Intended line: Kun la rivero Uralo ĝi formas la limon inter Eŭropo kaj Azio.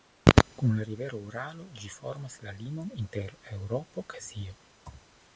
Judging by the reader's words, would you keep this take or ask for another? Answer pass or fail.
fail